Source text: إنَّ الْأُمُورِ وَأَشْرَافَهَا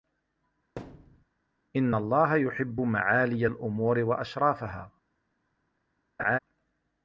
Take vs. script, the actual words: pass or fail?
fail